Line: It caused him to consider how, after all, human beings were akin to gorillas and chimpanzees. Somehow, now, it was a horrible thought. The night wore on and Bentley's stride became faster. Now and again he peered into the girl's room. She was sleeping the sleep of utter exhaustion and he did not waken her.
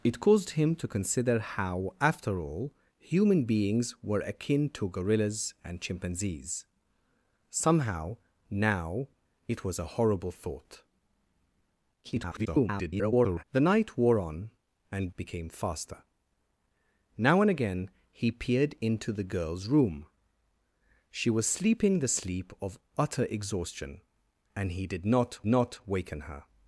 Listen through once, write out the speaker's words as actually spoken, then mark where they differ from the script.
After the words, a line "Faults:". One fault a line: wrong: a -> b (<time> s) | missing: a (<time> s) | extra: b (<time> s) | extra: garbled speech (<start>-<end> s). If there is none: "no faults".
It caused him to consider how, after all, human beings were akin to gorillas and chimpanzees. Somehow, now, it was a horrible thought. [garbled] The night wore on and Became faster. Now and again he peered into the girl's room. She was sleeping the sleep of utter exhaustion and he did not not waken her.
Faults:
extra: garbled speech (12.0-13.4 s)
missing: Bentley's stride (15.1 s)
extra: not (25.5 s)